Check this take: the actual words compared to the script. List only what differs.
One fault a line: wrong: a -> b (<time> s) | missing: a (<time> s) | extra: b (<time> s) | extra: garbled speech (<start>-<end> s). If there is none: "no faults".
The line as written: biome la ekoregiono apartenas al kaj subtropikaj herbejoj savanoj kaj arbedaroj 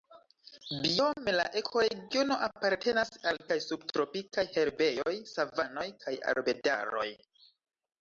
no faults